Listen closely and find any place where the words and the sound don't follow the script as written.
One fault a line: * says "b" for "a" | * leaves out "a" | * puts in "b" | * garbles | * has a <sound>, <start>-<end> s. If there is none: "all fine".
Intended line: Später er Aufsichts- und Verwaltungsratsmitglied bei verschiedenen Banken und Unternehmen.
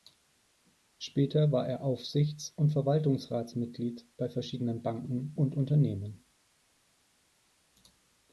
* puts in "war"